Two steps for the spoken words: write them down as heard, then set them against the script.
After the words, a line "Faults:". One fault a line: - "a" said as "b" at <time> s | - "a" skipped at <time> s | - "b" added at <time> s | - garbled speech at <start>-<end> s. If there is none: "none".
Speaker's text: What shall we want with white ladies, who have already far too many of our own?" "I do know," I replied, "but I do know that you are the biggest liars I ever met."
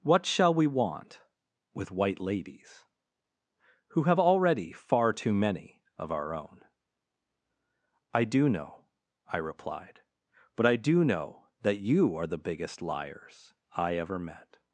What shall we want with white ladies, who have already far too many of our own?" "I do know," I replied, "but I do know that you are the biggest liars I ever met."
Faults:
none